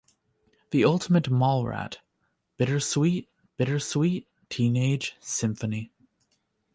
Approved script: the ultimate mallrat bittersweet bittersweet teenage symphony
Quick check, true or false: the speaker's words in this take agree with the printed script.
true